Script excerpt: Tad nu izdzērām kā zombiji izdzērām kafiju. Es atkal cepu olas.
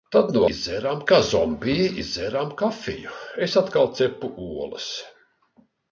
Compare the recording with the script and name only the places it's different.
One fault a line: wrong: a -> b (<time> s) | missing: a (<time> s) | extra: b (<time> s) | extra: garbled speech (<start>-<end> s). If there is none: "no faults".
no faults